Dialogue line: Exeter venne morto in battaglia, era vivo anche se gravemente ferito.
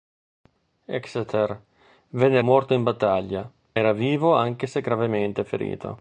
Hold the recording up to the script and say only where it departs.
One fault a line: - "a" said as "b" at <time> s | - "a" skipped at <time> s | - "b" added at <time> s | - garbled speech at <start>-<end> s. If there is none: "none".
none